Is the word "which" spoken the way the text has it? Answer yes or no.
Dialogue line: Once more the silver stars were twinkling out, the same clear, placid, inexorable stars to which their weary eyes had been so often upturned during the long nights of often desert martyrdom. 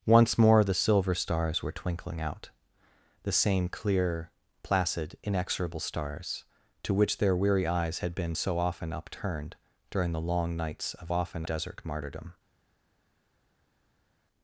yes